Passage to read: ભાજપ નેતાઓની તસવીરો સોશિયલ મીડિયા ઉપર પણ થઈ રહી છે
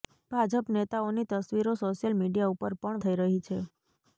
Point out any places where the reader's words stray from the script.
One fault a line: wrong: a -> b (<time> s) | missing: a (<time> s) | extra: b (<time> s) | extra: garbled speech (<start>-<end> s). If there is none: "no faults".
no faults